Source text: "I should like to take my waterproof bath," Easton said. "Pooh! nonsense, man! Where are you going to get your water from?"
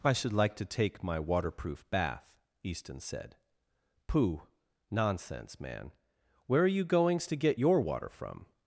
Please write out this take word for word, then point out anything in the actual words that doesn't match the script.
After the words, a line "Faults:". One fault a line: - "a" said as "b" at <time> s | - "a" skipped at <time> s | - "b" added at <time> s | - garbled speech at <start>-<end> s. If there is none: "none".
"I should like to take my waterproof bath," Easton said. "Pooh! nonsense, man! Where are you goings to get your water from?"
Faults:
- "going" said as "goings" at 6.8 s